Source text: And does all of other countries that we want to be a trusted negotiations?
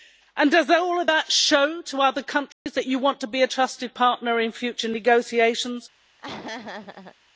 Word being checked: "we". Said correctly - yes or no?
no